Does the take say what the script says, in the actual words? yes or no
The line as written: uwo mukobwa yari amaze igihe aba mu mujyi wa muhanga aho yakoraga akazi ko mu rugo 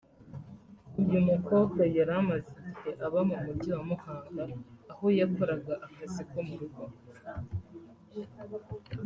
no